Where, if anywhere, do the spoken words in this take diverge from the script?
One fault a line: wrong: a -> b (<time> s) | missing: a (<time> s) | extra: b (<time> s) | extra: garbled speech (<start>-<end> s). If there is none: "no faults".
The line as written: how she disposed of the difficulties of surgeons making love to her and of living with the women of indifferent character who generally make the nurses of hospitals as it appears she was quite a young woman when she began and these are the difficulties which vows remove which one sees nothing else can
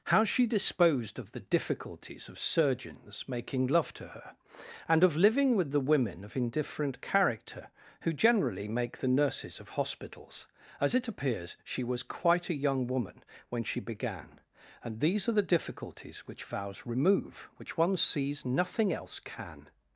no faults